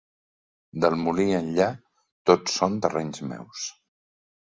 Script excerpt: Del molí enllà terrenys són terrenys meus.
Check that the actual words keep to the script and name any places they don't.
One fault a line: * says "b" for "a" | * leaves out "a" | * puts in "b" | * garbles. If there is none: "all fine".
* says "tot" for "terrenys"